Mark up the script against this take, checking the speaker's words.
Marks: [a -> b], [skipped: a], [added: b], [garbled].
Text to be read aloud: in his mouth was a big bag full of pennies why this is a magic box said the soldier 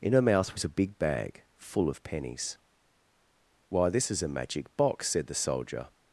in [his -> her] mouth was a big bag full of pennies why this is a magic box said the soldier